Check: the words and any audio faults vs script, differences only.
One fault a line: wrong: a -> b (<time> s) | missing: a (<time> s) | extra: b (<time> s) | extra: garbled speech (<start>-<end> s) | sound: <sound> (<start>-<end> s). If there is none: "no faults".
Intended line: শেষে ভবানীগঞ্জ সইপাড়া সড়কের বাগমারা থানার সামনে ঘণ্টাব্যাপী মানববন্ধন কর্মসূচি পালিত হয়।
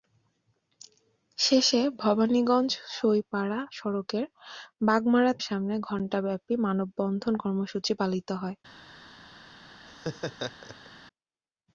missing: থানার (5.3 s)
sound: laugh (9.9-10.9 s)